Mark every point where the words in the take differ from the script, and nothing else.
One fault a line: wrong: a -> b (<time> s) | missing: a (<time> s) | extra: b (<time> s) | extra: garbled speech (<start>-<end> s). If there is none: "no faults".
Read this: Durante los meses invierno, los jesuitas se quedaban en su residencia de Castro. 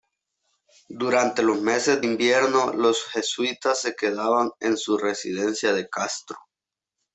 no faults